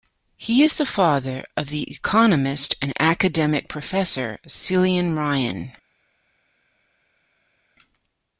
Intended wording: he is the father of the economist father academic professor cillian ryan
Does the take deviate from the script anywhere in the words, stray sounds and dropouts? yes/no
yes